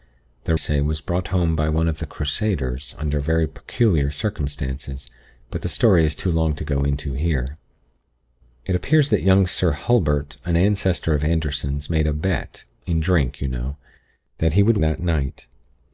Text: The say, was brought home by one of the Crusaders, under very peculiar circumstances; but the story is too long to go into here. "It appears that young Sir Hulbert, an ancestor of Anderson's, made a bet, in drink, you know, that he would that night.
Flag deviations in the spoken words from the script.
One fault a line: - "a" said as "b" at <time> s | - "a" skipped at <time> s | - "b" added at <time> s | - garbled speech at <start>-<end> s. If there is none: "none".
none